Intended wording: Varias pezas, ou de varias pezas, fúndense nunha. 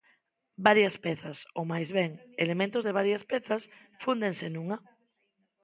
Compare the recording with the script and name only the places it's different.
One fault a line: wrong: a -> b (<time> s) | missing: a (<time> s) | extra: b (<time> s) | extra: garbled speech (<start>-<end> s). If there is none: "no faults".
extra: máis ben elementos (1.7 s)